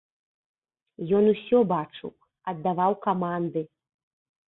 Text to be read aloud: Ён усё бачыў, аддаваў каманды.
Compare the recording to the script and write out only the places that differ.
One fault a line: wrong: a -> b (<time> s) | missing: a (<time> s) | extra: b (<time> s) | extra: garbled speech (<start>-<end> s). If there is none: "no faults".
no faults